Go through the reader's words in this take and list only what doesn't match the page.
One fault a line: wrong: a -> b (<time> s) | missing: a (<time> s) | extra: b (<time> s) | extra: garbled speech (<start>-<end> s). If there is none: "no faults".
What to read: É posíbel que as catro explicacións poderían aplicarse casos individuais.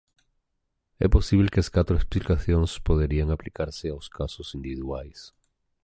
extra: aos (3.9 s)